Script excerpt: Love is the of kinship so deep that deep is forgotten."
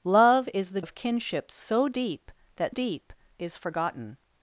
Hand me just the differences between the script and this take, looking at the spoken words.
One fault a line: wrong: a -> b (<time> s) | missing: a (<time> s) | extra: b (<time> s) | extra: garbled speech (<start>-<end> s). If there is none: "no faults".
no faults